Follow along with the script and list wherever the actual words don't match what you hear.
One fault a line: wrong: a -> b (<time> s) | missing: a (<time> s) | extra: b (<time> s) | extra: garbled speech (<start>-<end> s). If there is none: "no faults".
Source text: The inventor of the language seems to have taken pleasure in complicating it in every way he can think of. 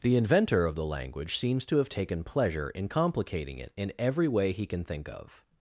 no faults